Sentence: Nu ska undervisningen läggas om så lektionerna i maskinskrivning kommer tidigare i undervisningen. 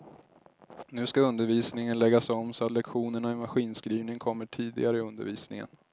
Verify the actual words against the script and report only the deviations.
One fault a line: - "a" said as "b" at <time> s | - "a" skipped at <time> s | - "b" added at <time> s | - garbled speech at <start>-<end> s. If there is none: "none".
none